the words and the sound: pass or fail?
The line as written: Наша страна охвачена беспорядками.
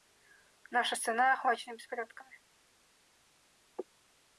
pass